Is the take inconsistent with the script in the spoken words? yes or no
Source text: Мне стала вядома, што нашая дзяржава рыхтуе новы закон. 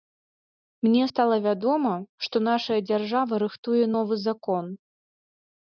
no